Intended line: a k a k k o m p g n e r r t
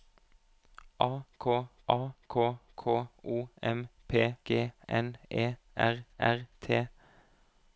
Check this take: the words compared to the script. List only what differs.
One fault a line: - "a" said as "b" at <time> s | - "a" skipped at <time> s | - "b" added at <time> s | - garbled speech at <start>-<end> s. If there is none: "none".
none